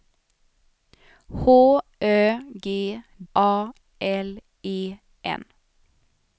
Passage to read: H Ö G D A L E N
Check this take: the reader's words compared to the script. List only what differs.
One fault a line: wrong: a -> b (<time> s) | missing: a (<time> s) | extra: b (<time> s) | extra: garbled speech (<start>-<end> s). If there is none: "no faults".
missing: D (2.6 s)